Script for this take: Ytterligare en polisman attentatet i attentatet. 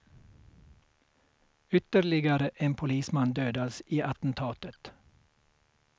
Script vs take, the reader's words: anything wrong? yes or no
yes